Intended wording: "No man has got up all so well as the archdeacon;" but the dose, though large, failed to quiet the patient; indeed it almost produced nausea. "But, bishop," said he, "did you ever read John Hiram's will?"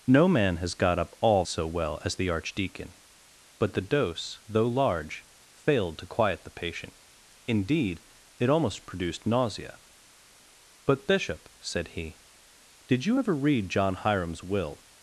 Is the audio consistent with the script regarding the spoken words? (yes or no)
yes